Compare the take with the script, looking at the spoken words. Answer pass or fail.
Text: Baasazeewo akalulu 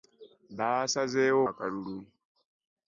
pass